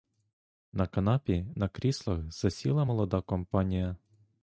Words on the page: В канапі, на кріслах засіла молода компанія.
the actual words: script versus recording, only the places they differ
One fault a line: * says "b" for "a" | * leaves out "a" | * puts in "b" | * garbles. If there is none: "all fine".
* says "На" for "В"